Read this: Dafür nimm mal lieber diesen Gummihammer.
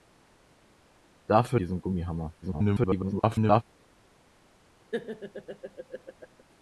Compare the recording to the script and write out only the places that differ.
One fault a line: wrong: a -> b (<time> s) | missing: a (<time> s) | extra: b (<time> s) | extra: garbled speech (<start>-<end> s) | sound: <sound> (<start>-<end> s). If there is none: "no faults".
missing: nimm mal lieber (1.6 s)
extra: garbled speech (2.4-3.6 s)
sound: laugh (4.9-6.4 s)